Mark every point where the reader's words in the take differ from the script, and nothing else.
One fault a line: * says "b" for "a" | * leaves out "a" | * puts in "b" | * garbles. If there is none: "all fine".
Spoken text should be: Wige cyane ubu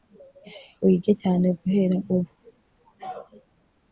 * puts in "guhera"